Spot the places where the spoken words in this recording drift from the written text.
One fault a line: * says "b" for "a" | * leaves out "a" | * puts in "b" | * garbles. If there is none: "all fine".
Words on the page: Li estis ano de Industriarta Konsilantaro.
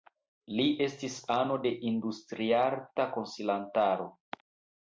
all fine